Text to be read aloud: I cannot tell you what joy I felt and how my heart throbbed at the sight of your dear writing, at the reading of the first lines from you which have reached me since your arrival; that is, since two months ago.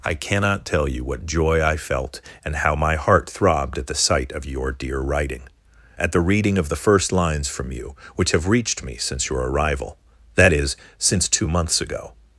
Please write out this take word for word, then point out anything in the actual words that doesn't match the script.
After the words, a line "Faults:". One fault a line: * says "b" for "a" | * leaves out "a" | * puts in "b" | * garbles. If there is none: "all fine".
I cannot tell you what joy I felt and how my heart throbbed at the sight of your dear writing, at the reading of the first lines from you which have reached me since your arrival; that is, since two months ago.
Faults:
all fine